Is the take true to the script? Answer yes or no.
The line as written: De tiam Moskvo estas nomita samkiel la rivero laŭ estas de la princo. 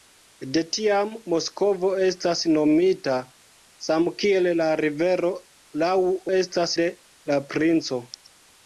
yes